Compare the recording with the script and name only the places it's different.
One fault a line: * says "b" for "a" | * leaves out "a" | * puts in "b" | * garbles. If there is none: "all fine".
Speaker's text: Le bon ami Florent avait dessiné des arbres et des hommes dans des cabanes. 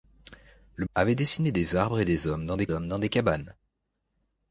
* leaves out "bon ami Florent"
* puts in "hommes dans des"